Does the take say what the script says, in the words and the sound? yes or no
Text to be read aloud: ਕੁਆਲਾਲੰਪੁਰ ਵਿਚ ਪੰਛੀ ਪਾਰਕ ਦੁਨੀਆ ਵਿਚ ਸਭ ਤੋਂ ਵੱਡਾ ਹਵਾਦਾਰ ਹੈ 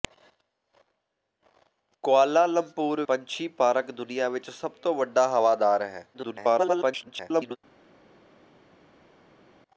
no